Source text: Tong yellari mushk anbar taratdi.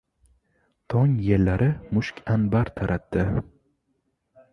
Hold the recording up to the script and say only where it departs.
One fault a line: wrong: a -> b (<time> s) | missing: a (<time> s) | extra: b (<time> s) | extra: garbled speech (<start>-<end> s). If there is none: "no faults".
no faults